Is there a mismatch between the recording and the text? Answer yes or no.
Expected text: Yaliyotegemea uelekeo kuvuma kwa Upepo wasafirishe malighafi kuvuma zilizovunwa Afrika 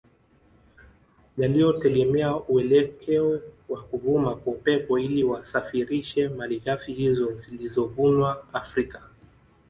yes